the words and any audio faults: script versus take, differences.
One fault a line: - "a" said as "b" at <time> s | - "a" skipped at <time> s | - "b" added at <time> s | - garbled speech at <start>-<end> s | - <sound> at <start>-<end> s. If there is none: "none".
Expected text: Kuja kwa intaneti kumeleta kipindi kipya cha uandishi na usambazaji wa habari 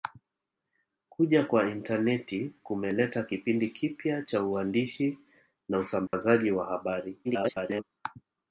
- dropout at 6.1-6.1 s
- garbled speech at 7.2-7.8 s